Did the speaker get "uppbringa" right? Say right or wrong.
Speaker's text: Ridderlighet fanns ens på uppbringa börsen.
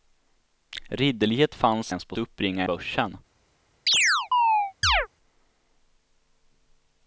right